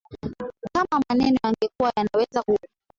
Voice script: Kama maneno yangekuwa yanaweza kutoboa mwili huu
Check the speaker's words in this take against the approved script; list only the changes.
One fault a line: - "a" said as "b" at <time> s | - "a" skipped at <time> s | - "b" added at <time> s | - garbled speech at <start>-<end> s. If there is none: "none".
- "kutoboa mwili" skipped at 2.4 s